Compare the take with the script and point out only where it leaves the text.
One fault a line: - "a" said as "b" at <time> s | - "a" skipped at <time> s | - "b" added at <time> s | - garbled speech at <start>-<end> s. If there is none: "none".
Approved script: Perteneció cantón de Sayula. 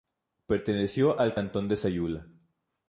- "al" added at 1.2 s